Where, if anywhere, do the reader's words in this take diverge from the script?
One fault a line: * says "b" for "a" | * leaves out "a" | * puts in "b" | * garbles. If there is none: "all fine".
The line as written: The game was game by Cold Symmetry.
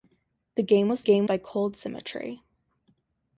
all fine